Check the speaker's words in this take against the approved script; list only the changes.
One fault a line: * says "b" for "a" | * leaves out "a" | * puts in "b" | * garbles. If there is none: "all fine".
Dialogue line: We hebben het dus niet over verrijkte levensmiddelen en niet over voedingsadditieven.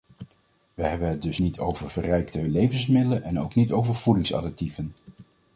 * puts in "ook"